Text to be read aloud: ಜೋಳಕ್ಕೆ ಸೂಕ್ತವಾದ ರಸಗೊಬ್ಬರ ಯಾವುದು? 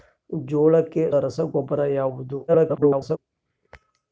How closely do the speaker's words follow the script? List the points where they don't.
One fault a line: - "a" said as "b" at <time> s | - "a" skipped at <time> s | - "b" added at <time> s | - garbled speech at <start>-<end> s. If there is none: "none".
- "ಸೂಕ್ತವಾದ" skipped at 1.1 s
- garbled speech at 2.5-3.2 s